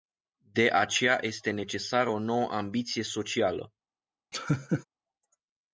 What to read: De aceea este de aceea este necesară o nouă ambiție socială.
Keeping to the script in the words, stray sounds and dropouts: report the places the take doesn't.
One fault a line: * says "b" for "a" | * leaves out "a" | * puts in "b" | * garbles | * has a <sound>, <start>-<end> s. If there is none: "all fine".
* leaves out "de aceea este"
* has a laugh, 4.3-4.8 s